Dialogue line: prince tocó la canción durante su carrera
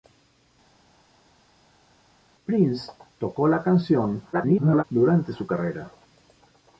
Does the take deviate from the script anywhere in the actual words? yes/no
yes